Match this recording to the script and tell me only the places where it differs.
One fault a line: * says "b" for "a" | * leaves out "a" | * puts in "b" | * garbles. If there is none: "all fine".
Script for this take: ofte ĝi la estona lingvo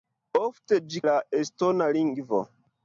all fine